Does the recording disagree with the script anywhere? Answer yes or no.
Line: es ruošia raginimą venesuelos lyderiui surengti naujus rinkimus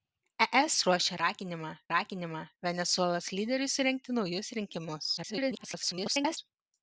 yes